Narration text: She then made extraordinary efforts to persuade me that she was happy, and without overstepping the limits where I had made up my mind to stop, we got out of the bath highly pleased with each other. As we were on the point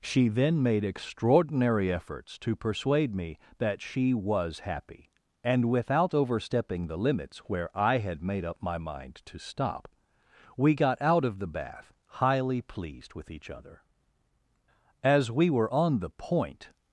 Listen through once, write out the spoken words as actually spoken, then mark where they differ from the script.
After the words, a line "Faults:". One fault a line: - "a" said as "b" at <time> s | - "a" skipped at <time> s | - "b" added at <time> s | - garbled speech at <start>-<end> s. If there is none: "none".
She then made extraordinary efforts to persuade me that she was happy, and without overstepping the limits where I had made up my mind to stop, we got out of the bath highly pleased with each other. As we were on the point
Faults:
none